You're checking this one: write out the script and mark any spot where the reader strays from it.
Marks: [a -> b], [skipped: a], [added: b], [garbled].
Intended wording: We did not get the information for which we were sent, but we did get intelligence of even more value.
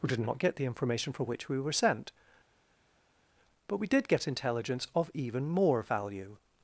We did not get the information for which we were sent, but we did get intelligence of even more value.